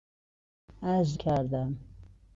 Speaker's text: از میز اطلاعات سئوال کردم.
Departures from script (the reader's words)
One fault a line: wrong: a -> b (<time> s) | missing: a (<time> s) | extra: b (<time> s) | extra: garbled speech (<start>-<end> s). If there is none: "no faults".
missing: میز اطلاعات سئوال (1.2 s)